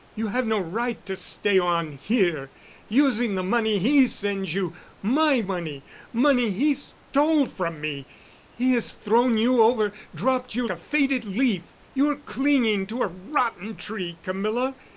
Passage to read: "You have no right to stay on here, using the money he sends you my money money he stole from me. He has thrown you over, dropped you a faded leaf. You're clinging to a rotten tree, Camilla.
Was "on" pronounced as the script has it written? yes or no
yes